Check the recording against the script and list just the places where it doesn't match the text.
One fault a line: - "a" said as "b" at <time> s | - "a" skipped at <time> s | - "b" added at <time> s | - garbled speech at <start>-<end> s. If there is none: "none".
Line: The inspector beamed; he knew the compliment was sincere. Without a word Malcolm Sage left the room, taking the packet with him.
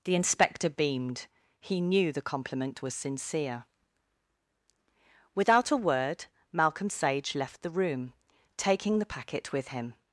none